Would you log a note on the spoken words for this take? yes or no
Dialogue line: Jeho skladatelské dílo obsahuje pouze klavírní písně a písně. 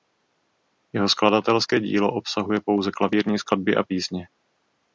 yes